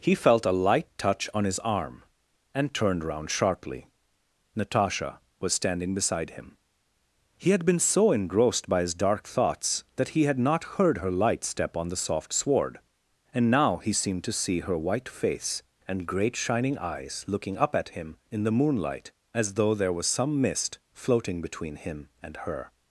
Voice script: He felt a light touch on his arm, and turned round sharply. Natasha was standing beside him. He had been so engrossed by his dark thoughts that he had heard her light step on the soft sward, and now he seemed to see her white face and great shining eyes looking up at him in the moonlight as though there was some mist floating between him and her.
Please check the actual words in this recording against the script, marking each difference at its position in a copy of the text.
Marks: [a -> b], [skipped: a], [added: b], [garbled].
He felt a light touch on his arm, and turned round sharply. Natasha was standing beside him. He had been so engrossed by his dark thoughts that he had [added: not] heard her light step on the soft sward, and now he seemed to see her white face and great shining eyes looking up at him in the moonlight as though there was some mist floating between him and her.